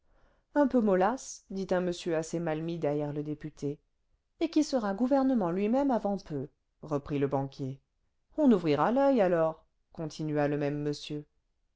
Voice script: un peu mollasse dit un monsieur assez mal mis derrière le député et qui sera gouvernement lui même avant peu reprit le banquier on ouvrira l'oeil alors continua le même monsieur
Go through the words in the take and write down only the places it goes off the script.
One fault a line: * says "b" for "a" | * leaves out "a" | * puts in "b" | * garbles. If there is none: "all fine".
all fine